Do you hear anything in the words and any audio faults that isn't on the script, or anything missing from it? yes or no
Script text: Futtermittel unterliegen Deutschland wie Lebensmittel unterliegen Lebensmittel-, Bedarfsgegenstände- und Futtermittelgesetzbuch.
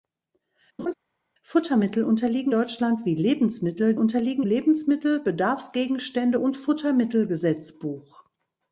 yes